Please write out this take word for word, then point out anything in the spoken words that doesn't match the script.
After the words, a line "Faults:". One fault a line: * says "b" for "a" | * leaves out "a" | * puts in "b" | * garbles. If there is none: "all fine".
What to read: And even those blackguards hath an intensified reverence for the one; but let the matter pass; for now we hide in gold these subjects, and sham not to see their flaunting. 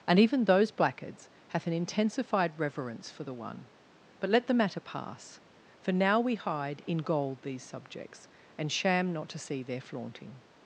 And even those blackguards hath an intensified reverence for the one; but let the matter pass; for now we hide in gold these subjects, and sham not to see their flaunting.
Faults:
all fine